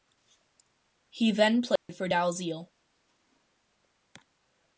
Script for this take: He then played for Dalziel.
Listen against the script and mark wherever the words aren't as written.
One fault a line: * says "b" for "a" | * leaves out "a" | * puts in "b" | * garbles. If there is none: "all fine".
all fine